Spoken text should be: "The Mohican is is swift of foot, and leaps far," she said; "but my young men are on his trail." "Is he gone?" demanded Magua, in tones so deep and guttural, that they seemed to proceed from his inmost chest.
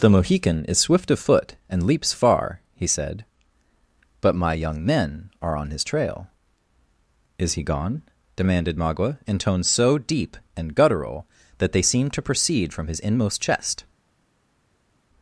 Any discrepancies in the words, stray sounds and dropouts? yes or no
yes